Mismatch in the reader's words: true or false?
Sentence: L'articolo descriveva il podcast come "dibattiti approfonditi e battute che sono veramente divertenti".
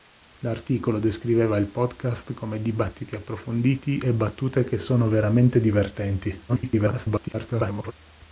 true